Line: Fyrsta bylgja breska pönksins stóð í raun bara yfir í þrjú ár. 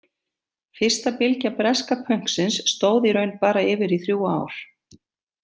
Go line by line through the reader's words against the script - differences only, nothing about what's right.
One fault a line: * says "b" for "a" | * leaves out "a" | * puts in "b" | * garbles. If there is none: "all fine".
all fine